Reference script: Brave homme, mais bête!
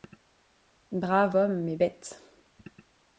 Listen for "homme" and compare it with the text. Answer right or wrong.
right